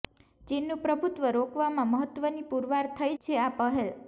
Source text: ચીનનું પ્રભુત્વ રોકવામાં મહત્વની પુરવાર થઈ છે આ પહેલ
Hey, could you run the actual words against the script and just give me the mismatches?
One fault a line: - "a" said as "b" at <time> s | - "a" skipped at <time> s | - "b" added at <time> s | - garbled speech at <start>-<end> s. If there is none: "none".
none